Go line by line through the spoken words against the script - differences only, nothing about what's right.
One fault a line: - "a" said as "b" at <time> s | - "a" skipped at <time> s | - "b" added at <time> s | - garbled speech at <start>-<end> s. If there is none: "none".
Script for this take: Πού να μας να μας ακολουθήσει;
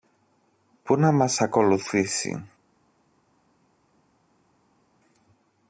- "να μας" skipped at 1.4 s